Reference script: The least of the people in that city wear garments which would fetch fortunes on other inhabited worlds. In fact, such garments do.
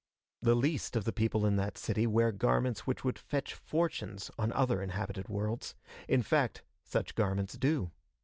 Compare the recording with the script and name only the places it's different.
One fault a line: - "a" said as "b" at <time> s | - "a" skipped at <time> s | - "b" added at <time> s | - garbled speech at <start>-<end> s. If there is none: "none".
none